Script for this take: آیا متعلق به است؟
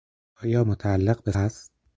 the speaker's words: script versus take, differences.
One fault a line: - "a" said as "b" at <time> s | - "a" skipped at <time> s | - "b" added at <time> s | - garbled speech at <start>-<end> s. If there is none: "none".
none